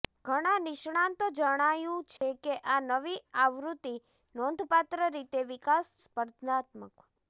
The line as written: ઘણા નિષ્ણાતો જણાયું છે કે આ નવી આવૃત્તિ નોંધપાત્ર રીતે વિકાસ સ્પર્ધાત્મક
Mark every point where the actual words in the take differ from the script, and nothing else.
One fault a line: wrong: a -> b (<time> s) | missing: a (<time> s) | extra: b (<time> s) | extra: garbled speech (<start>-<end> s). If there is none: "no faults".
no faults